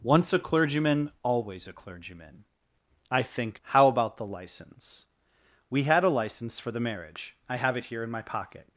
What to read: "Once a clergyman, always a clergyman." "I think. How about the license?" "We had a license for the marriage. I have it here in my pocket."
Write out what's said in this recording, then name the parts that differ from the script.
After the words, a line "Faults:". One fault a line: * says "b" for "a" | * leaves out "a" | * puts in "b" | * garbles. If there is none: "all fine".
"Once a clergyman, always a clergyman." "I think. How about the license?" "We had a license for the marriage. I have it here in my pocket."
Faults:
all fine